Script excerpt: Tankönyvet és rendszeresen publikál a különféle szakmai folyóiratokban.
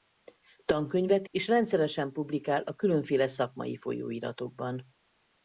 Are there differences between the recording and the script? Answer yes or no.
no